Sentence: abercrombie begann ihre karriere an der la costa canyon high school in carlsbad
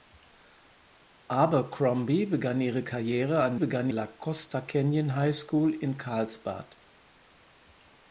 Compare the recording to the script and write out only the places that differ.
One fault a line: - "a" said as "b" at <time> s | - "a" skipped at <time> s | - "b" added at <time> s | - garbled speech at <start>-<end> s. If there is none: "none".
- "der" said as "begann" at 3.5 s